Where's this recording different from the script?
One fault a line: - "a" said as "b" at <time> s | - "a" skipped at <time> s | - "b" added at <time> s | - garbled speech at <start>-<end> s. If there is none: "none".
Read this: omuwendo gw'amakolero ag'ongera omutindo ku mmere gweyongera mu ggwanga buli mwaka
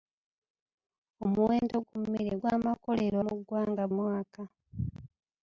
- "gw'amakolero ag'ongera omutindo" skipped at 1.8 s
- "gweyongera" said as "gw'amakolero" at 2.4 s
- "buli" skipped at 3.8 s